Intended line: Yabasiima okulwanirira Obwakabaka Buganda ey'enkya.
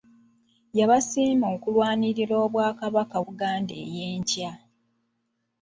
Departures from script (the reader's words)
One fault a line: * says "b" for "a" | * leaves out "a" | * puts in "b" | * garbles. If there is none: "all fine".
all fine